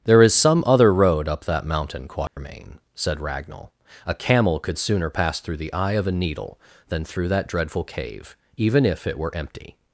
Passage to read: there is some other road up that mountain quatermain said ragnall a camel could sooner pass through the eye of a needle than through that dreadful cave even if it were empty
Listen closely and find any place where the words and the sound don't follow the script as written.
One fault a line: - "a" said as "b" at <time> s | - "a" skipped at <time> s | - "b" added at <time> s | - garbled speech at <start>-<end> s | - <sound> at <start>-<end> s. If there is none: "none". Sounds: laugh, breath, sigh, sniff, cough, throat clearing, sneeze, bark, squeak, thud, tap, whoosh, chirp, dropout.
- dropout at 2.3-2.4 s